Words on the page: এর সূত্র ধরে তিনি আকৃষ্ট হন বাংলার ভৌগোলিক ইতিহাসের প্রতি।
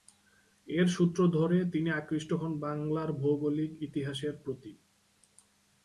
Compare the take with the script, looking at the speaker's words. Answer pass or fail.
pass